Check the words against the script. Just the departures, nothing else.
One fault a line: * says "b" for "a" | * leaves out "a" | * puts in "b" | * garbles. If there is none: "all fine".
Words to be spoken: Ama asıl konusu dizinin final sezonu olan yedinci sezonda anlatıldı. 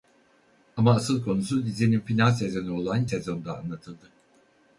* leaves out "yedinci"